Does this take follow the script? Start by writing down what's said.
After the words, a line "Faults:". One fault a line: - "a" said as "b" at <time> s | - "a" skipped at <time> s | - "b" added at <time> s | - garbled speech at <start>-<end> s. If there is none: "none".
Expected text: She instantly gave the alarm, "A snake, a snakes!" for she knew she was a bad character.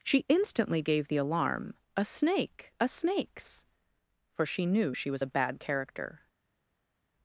She instantly gave the alarm, "A snake, a snakes!" for she knew she was a bad character.
Faults:
none